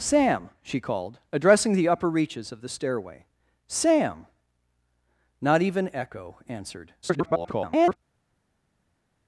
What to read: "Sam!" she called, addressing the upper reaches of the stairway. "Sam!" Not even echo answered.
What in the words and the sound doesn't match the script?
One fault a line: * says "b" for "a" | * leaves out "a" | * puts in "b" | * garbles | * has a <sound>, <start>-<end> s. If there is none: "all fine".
* garbles